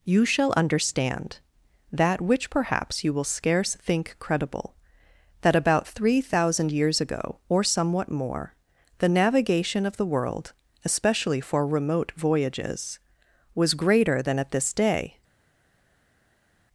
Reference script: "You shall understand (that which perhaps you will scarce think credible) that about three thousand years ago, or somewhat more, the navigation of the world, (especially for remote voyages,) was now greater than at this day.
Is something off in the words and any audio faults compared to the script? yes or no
yes